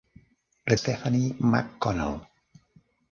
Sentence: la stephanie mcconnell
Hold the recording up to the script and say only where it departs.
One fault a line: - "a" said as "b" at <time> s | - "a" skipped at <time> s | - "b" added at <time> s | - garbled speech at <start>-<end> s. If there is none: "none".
none